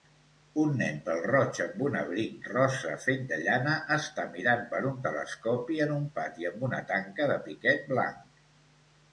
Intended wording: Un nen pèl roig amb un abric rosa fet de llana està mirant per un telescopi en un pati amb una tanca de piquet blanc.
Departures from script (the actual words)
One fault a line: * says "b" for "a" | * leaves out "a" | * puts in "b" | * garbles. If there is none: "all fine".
all fine